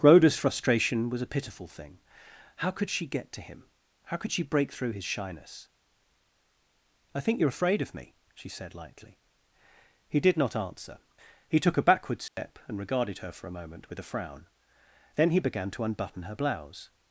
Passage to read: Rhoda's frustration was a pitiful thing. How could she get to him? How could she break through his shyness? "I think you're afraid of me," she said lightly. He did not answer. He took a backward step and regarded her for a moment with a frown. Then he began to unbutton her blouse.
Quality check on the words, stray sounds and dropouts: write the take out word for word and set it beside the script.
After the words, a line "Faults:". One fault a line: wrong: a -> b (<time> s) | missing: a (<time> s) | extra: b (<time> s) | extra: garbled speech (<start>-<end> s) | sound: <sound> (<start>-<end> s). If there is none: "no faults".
Rhoda's frustration was a pitiful thing. How could she get to him? How could she break through his shyness? "I think you're afraid of me," she said lightly. He did not answer. He took a backward step and regarded her for a moment with a frown. Then he began to unbutton her blouse.
Faults:
sound: dropout (12.3-12.4 s)